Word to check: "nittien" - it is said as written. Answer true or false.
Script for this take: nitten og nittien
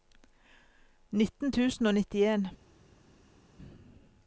true